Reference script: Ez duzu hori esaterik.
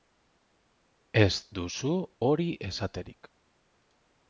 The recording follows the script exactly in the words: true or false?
true